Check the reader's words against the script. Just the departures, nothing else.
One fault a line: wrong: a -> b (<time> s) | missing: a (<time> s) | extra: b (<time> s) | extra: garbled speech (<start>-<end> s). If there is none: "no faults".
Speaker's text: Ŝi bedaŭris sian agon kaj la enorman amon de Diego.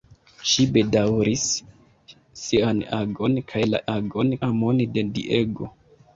wrong: enorman -> agon (4.0 s)